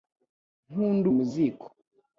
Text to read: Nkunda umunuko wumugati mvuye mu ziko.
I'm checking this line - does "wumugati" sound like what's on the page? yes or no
no